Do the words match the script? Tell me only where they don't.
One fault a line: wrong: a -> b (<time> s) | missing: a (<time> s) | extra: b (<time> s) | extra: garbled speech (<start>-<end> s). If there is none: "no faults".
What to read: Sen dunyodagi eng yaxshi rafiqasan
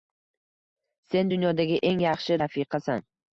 no faults